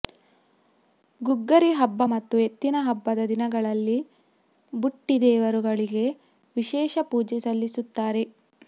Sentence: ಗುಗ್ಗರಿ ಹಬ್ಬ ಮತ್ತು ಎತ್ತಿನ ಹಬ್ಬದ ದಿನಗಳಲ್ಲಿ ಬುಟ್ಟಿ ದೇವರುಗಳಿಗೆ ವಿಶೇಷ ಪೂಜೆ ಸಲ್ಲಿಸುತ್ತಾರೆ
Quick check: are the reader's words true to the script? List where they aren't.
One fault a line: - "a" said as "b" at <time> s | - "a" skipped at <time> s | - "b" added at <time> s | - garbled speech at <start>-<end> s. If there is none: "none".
none